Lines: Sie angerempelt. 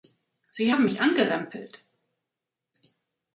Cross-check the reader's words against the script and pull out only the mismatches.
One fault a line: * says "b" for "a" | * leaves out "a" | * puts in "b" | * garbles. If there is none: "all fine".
* puts in "haben mich"